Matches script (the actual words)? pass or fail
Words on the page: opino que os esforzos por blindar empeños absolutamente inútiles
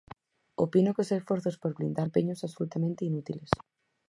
pass